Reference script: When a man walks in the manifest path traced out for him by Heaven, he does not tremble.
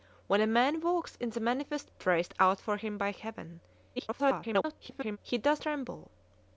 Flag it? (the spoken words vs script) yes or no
yes